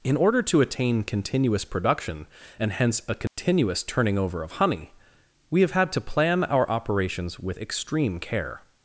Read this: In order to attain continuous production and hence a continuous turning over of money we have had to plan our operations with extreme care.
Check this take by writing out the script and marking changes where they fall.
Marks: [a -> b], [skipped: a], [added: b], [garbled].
In order to attain continuous production and hence a continuous turning over of [money -> honey] we have had to plan our operations with extreme care.